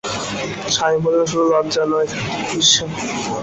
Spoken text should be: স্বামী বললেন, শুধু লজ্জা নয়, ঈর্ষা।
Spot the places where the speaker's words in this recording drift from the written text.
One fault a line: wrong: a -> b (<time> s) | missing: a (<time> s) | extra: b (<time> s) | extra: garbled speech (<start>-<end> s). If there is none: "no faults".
no faults